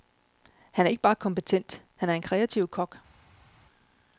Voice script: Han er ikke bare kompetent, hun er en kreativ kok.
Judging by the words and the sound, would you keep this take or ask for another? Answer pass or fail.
fail